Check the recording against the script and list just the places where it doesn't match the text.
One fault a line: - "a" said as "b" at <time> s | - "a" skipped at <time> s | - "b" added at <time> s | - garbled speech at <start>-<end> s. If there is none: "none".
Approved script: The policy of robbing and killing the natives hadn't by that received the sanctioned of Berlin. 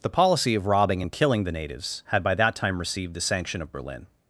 - "hadn't" said as "had" at 2.1 s
- "time" added at 2.6 s
- "sanctioned" said as "sanction" at 3.2 s